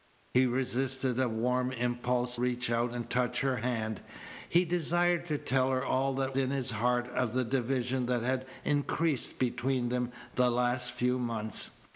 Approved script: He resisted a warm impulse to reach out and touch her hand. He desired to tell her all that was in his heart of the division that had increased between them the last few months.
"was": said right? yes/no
no